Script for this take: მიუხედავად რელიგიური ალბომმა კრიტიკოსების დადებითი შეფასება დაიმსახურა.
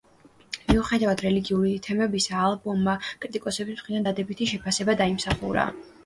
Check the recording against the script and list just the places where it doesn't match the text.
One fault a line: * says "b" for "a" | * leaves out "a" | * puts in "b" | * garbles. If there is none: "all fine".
* puts in "თემებისა"
* puts in "მხრიდან"